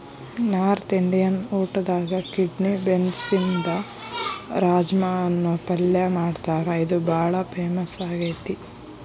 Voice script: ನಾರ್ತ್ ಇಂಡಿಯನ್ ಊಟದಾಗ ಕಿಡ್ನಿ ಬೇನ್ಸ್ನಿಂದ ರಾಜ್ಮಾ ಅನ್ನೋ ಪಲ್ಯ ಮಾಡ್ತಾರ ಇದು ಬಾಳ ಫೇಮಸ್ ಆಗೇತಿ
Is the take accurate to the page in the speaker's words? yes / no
yes